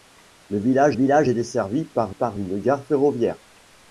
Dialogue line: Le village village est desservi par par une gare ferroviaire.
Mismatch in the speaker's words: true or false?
false